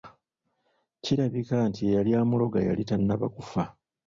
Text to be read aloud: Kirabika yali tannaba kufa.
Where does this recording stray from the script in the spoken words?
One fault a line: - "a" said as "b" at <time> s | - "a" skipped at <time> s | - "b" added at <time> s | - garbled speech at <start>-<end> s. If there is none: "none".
- "nti eyali amuloga" added at 1.7 s